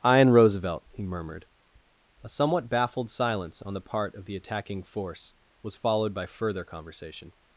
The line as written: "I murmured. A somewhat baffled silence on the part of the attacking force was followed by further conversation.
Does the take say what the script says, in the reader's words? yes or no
no